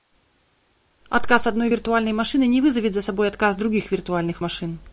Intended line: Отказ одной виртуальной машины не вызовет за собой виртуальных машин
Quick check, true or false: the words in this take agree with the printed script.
false